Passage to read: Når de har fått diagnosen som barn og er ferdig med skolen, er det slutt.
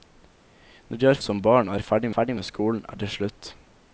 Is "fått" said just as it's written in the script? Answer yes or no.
no